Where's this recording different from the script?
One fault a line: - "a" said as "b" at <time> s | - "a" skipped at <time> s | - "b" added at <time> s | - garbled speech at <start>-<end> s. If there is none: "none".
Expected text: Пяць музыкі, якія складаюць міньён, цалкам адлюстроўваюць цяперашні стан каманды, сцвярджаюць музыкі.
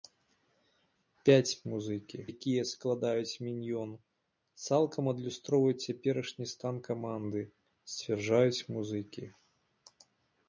none